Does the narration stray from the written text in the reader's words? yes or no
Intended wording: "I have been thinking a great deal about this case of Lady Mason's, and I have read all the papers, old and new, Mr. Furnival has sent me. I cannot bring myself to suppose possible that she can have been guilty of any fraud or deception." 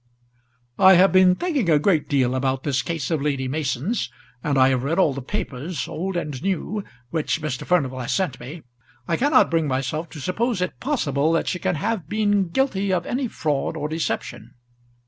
yes